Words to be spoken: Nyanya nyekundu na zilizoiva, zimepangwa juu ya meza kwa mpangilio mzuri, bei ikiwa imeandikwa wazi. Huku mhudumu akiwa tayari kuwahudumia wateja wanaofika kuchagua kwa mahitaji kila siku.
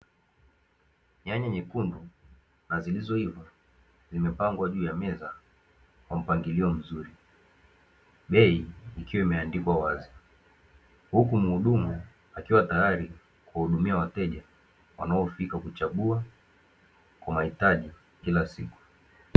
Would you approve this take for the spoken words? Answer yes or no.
yes